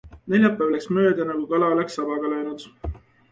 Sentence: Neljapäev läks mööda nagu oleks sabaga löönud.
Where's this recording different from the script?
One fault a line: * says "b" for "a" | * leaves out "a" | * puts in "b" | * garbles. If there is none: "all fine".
* puts in "kala"